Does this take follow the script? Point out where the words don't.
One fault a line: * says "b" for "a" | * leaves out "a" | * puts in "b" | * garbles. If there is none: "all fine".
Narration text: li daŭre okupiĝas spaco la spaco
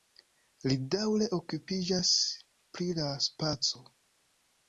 * says "pri" for "spaco"